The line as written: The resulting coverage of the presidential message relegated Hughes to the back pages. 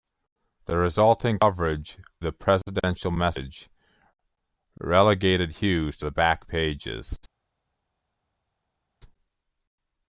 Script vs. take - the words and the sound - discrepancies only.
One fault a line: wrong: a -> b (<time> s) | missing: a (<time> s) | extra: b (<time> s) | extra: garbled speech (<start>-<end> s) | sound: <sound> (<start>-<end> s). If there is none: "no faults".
missing: of (2.0 s)